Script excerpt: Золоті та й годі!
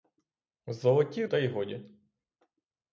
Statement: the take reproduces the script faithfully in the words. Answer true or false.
true